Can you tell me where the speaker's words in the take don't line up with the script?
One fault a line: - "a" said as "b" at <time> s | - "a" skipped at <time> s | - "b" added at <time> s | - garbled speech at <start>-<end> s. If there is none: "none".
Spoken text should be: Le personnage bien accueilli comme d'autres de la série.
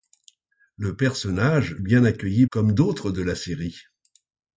none